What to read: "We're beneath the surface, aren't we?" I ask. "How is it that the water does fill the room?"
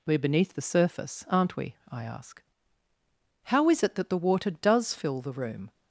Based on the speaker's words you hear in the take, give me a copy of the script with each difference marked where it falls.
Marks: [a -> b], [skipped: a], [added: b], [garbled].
"We're beneath the surface, aren't we?" I ask. "How is it that the water does fill the room?"